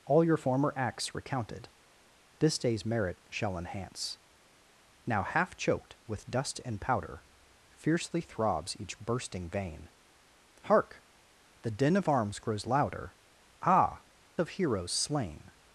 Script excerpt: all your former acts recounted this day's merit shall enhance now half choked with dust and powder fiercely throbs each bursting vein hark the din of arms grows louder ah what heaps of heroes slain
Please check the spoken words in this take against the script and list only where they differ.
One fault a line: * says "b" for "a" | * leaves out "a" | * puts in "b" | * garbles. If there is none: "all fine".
* leaves out "what heaps"